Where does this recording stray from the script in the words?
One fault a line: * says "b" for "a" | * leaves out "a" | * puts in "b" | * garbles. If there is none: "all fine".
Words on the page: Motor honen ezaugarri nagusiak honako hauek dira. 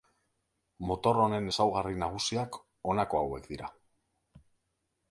all fine